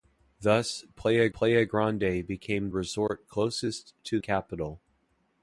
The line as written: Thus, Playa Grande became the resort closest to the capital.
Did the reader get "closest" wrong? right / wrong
right